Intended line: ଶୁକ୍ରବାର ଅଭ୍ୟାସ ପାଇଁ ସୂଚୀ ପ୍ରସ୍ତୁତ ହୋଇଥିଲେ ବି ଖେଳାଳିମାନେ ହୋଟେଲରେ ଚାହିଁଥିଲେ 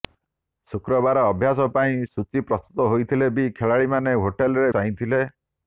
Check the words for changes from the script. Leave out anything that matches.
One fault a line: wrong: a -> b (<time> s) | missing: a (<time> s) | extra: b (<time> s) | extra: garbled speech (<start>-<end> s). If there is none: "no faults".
no faults